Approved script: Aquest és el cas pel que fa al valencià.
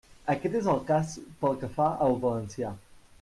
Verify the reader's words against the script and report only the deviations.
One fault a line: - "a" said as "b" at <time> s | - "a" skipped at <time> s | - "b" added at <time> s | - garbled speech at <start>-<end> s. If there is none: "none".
none